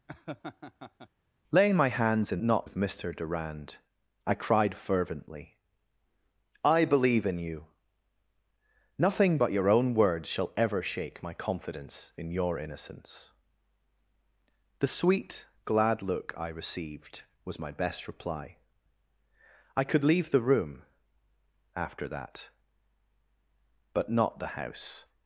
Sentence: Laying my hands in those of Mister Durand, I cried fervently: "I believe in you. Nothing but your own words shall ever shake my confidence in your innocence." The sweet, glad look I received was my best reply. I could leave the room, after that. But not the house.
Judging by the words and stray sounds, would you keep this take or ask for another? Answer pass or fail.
fail